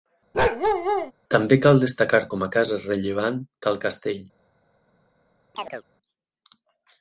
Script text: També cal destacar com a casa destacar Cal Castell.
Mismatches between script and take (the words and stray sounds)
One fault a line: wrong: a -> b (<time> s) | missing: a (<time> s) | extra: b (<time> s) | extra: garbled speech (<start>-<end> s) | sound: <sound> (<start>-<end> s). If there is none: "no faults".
sound: bark (0.3-1.1 s)
wrong: destacar -> rellevant (2.9 s)
sound: chirp (5.5-5.8 s)